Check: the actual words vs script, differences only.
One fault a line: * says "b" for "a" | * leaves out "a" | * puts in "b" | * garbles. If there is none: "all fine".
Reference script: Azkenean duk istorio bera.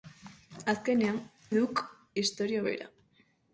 all fine